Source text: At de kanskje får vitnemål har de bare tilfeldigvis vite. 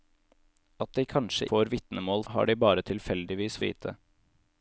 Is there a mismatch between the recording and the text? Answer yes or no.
no